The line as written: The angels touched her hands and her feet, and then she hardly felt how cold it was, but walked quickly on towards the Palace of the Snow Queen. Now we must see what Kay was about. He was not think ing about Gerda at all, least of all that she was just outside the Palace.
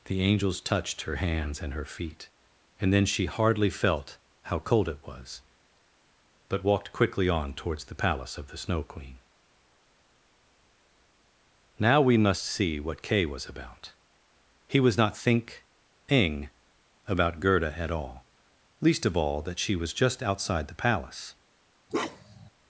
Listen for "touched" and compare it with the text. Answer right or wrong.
right